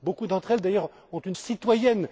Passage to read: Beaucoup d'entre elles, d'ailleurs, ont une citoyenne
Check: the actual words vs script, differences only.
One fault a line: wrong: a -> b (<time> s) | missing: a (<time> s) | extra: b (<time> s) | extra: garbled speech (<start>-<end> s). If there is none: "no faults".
no faults